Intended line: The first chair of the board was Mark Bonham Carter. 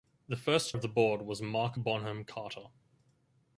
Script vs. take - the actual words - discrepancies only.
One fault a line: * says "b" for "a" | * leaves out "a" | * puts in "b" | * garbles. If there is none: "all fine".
* leaves out "chair"